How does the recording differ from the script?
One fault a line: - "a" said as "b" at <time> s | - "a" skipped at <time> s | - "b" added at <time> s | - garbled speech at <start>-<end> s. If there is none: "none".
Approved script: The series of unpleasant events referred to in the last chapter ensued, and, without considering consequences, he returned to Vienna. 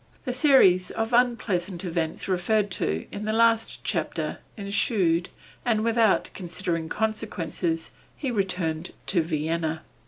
none